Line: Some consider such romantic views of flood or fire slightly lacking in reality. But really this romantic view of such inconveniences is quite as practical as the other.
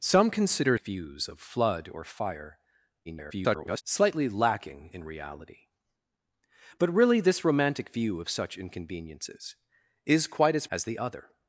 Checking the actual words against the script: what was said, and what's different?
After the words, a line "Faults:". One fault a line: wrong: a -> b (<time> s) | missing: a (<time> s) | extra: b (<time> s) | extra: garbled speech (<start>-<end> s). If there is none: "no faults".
Some consider views of flood or fire [garbled] slightly lacking in reality. But really this romantic view of such inconveniences is quite as as the other.
Faults:
missing: such romantic (0.8 s)
extra: garbled speech (3.1-3.8 s)
missing: practical (10.7 s)